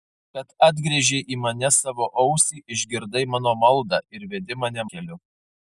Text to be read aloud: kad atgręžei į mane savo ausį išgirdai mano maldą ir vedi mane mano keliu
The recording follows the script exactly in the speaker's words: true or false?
false